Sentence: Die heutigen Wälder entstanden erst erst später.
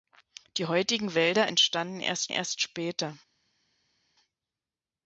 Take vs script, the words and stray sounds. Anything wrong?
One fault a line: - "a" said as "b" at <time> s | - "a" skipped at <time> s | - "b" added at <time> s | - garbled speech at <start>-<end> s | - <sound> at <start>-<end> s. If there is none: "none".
none